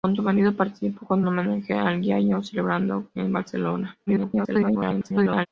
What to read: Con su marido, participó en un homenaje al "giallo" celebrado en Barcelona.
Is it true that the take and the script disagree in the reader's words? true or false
true